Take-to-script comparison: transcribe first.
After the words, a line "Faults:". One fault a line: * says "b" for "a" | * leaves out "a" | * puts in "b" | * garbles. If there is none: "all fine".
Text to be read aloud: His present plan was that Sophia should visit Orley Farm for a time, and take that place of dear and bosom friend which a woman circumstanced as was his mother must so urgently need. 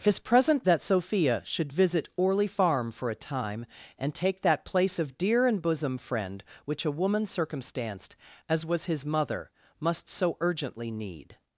His present that Sophia should visit Orley Farm for a time, and take that place of dear and bosom friend which a woman circumstanced as was his mother must so urgently need.
Faults:
* leaves out "plan was"